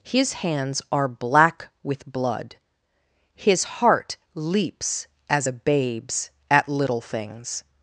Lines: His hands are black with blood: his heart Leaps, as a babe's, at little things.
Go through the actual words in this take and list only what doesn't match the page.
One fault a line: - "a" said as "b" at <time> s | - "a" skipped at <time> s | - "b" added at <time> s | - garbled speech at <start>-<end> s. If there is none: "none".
none